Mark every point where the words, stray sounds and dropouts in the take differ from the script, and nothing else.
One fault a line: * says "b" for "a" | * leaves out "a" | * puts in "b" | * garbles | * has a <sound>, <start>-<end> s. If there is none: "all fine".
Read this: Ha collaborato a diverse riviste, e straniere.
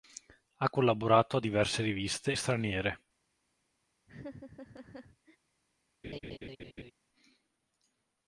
* has a laugh, 4.1-5.4 s
* has a laugh, 6.0-6.9 s